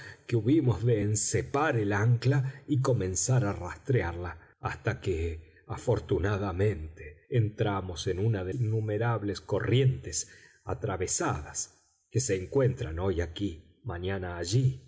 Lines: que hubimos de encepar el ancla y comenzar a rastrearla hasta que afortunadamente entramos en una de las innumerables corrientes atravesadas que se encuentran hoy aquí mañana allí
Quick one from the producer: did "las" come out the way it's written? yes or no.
no